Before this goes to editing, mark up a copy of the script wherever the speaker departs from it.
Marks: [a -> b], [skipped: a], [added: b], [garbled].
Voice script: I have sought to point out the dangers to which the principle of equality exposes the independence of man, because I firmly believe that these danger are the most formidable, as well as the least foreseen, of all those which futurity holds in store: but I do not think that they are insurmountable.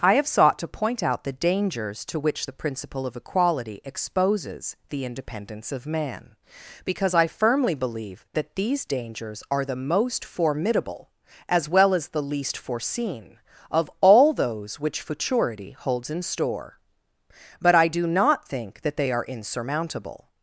I have sought to point out the dangers to which the principle of equality exposes the independence of man, because I firmly believe that these [danger -> dangers] are the most formidable, as well as the least foreseen, of all those which futurity holds in store: but I do not think that they are insurmountable.